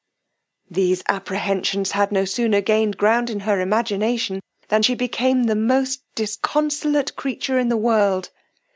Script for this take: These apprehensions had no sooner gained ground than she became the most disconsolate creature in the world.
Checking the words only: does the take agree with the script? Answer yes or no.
no